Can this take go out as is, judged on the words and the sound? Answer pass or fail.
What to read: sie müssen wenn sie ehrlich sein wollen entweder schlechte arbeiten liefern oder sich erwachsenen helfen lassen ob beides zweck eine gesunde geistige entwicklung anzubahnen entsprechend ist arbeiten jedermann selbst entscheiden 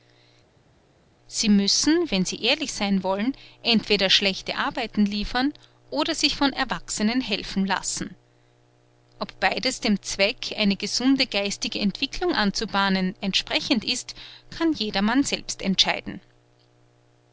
fail